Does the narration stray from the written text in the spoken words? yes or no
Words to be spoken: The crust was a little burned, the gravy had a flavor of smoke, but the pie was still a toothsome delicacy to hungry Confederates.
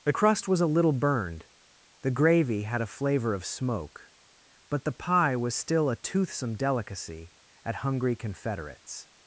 yes